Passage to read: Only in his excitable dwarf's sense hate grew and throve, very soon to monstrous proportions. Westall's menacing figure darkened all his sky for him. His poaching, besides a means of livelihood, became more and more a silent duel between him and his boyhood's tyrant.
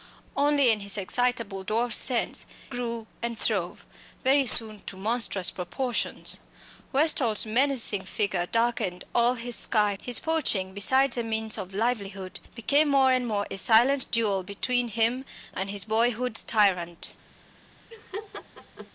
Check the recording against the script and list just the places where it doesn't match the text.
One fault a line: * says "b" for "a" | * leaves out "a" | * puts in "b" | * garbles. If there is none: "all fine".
* leaves out "hate"
* leaves out "for him"